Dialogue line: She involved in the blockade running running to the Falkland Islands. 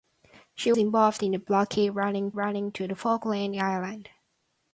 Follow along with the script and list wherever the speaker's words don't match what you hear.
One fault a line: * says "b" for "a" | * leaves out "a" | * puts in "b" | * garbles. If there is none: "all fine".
all fine